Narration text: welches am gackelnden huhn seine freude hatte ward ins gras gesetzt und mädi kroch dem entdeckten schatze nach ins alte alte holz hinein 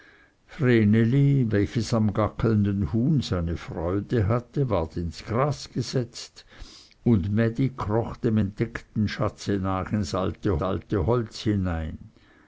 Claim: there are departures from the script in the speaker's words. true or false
false